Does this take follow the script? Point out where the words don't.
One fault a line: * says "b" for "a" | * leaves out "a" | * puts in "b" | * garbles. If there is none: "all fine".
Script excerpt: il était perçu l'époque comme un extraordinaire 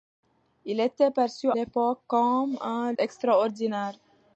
all fine